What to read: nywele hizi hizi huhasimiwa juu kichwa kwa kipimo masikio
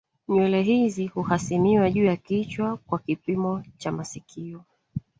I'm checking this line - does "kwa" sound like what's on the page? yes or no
yes